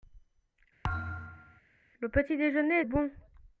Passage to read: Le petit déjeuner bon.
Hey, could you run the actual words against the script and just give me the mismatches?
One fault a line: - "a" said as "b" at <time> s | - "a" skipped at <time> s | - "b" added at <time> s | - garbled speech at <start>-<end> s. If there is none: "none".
none